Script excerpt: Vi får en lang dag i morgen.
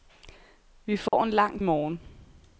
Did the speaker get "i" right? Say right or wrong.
wrong